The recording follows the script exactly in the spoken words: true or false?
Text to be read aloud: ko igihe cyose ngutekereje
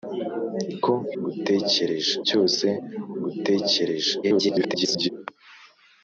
false